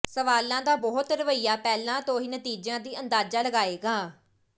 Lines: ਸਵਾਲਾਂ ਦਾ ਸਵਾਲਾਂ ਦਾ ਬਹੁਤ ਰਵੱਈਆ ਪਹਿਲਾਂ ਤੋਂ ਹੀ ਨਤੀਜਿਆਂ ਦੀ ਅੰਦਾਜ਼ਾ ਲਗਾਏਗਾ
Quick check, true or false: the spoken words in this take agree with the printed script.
false